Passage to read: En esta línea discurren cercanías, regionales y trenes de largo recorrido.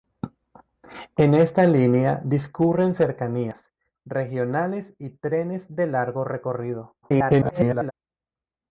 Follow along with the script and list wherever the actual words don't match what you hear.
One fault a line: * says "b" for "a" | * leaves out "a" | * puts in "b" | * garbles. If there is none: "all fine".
* garbles